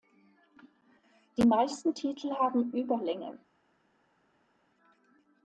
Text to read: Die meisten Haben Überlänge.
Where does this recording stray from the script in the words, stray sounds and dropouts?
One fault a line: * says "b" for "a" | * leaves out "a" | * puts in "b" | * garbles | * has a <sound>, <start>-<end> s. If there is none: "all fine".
* puts in "Titel"